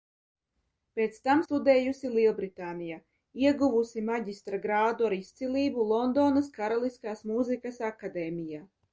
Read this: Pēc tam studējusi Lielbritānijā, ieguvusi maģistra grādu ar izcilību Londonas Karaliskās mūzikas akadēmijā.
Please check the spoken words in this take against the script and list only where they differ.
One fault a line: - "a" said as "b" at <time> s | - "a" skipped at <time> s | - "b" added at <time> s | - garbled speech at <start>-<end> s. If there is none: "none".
none